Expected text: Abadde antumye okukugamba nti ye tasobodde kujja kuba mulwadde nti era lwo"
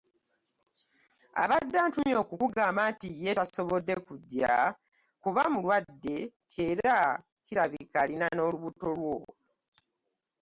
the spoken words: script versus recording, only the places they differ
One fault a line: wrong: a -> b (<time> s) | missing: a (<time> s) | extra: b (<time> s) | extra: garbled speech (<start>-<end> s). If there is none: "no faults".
extra: kirabika alina n'olubuto (7.4 s)